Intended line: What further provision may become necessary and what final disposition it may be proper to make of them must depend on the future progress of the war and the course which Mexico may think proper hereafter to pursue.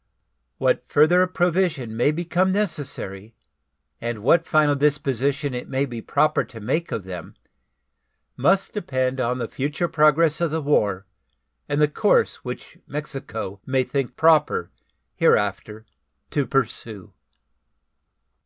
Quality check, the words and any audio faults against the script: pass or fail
pass